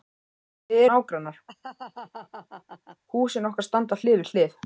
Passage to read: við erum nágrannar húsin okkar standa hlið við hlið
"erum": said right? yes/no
no